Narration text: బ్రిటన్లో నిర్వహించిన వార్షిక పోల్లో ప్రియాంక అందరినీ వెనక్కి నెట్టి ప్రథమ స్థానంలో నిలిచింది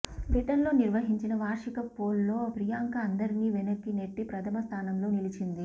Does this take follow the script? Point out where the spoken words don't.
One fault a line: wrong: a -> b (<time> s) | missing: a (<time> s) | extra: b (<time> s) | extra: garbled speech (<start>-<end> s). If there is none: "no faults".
no faults